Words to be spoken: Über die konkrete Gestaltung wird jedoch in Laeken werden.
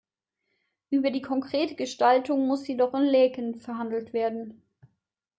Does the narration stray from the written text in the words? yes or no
yes